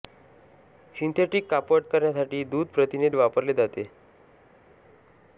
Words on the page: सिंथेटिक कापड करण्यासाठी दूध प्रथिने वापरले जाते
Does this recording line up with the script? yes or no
yes